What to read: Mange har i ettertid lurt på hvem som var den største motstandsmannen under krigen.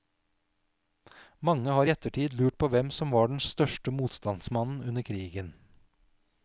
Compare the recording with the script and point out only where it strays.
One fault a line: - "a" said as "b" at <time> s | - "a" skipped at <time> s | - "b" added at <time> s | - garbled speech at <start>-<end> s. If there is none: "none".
none